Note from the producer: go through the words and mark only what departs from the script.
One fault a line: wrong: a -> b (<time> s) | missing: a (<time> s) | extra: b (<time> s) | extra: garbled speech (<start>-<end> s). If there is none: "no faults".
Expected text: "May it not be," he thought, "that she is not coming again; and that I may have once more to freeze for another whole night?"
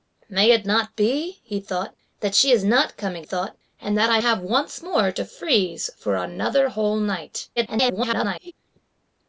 wrong: again -> thought (3.2 s)
missing: may (4.2 s)
extra: garbled speech (7.6-8.5 s)